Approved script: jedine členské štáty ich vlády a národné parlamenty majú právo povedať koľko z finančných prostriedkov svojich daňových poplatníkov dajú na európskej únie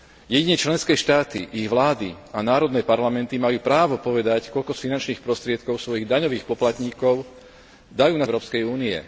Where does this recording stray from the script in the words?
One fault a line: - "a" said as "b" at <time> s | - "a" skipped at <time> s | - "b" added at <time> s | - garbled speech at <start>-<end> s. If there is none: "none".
none